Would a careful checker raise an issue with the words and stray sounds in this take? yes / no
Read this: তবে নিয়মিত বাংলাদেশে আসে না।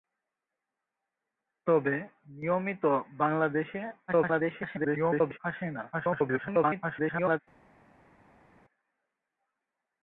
yes